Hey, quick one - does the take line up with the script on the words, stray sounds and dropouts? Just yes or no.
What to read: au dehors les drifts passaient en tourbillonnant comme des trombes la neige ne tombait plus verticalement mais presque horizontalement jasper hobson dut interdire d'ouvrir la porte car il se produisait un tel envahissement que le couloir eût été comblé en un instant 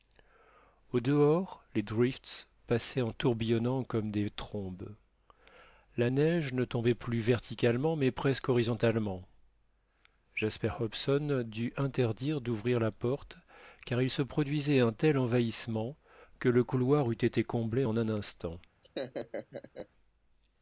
no